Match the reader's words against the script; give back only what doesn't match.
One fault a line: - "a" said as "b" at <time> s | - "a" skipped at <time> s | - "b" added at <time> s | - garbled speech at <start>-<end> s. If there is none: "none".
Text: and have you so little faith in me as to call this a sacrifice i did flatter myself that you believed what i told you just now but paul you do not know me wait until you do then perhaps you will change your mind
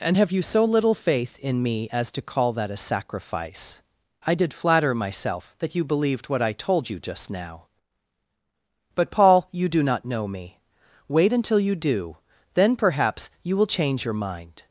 - "this" said as "that" at 2.5 s